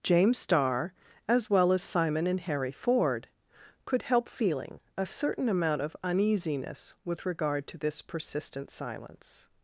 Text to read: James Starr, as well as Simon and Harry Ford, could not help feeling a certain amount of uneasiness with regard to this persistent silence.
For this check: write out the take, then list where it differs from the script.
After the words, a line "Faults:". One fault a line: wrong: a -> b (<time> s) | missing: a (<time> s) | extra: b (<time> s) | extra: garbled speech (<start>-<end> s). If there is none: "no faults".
James Starr, as well as Simon and Harry Ford, could help feeling a certain amount of uneasiness with regard to this persistent silence.
Faults:
missing: not (4.0 s)